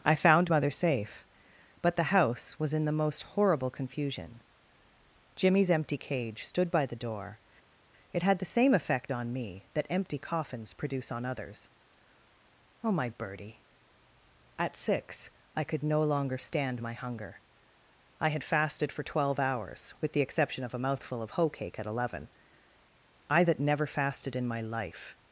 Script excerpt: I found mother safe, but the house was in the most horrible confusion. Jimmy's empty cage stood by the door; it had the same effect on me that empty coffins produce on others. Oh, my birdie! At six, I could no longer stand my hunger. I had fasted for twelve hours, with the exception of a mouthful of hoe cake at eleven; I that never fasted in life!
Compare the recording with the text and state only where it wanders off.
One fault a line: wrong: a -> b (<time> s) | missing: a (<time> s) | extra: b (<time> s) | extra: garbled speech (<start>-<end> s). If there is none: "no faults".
extra: my (24.5 s)